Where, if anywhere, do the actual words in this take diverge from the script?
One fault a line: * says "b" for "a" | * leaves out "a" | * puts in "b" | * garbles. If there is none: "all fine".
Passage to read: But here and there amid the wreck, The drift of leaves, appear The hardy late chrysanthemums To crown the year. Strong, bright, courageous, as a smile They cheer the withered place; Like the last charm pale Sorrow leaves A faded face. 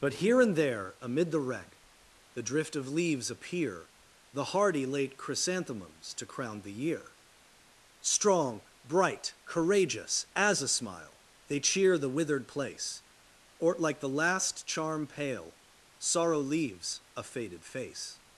* puts in "or"